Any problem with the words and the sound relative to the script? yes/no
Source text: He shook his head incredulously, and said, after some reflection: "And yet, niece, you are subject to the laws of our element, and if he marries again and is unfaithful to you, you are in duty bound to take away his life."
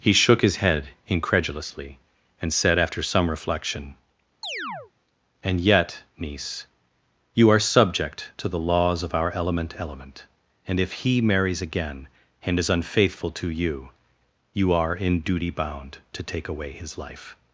yes